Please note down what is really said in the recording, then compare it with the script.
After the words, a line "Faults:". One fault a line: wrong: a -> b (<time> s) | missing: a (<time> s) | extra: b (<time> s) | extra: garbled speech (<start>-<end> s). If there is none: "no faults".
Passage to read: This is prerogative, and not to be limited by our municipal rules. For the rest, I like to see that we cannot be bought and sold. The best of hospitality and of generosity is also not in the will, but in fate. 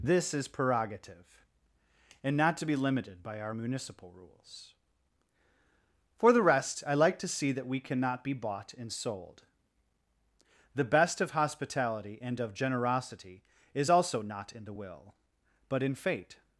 This is prerogative, and not to be limited by our municipal rules. For the rest, I like to see that we cannot be bought and sold. The best of hospitality and of generosity is also not in the will, but in fate.
Faults:
no faults